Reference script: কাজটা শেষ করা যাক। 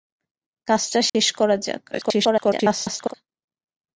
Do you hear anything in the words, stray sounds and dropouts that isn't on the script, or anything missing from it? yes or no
yes